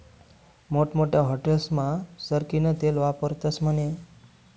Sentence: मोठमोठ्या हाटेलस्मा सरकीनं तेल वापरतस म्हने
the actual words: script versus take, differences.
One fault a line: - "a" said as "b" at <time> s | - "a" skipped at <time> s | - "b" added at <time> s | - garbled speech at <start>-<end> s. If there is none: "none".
none